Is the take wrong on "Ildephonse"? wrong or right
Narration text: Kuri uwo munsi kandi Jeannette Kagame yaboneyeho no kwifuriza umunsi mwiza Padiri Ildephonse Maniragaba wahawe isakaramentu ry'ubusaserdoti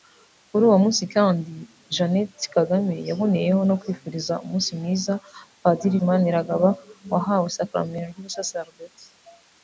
wrong